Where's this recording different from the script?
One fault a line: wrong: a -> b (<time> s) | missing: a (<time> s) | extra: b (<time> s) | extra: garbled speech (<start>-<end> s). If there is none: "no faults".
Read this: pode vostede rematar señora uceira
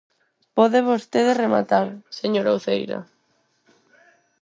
no faults